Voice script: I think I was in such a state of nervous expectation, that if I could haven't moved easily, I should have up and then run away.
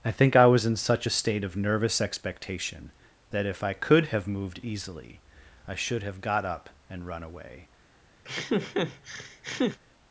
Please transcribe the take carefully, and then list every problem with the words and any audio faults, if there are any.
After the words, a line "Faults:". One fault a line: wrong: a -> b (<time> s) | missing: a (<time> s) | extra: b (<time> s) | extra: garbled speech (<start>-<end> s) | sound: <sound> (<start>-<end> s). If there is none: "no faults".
I think I was in such a state of nervous expectation, that if I could have moved easily, I should have got up and run away.
Faults:
wrong: haven't -> have (4.1 s)
extra: got (6.2 s)
missing: then (7.1 s)
sound: laugh (8.2-9.8 s)